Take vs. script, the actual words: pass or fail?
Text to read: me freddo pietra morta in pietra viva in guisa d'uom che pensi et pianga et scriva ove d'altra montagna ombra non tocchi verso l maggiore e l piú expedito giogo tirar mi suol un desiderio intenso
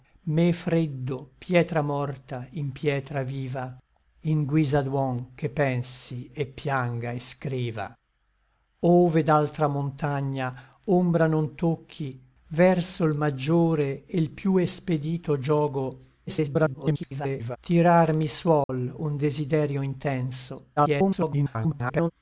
fail